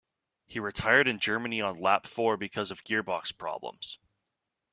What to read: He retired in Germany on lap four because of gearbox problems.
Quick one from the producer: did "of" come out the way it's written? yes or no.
yes